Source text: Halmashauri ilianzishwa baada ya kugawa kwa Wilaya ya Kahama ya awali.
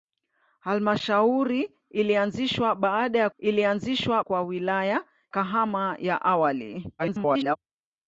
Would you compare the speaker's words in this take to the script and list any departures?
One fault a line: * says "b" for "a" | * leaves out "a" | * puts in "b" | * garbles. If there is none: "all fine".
* says "ilianzishwa" for "kugawa"
* leaves out "ya"
* garbles